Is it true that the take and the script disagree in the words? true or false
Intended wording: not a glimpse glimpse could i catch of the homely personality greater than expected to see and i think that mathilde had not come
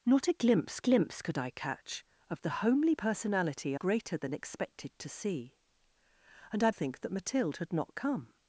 false